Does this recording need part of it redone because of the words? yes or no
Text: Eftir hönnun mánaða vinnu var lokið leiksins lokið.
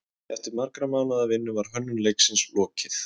yes